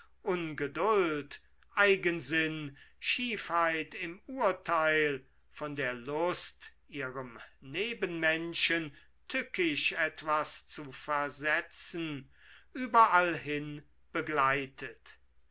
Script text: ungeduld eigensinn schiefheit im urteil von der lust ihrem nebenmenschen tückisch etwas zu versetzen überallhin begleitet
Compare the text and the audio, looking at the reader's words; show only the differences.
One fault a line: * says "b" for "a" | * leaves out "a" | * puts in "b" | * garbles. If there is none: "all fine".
all fine